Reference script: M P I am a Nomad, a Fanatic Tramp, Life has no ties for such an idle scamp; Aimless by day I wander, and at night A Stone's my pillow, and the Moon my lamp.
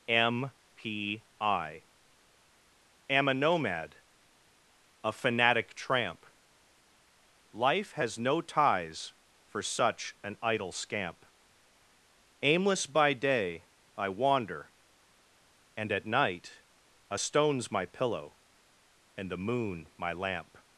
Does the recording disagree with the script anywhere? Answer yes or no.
no